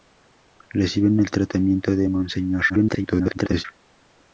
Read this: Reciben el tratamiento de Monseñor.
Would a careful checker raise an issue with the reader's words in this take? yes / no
yes